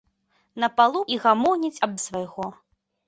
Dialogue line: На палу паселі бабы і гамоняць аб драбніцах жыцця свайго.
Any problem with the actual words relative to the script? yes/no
yes